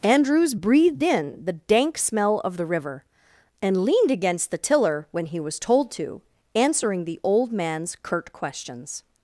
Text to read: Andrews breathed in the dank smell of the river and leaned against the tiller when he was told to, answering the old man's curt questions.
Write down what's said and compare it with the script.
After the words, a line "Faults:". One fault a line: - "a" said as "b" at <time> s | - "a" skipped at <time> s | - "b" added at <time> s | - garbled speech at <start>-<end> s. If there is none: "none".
Andrews breathed in the dank smell of the river and leaned against the tiller when he was told to, answering the old man's curt questions.
Faults:
none